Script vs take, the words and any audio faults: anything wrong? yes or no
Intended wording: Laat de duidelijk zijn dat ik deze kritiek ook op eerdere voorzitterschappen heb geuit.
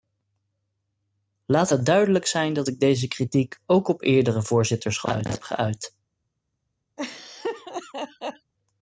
yes